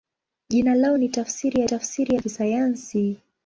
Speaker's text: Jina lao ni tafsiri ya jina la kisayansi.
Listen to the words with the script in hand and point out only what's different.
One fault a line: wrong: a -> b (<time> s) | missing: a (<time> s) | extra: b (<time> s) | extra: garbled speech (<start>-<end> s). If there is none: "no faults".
wrong: jina -> tafsiri (1.6 s)